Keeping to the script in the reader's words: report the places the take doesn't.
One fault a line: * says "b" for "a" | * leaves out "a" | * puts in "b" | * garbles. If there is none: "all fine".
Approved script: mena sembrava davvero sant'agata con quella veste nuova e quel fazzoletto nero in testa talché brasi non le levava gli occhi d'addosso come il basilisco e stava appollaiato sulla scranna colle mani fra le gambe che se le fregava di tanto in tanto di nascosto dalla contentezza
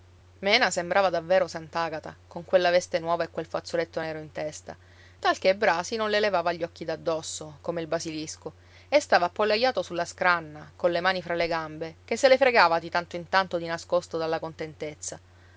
all fine